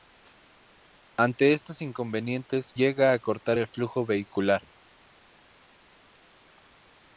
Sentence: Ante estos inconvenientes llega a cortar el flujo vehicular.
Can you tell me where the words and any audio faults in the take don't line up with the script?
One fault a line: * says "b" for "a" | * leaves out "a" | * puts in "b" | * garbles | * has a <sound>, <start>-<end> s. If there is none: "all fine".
all fine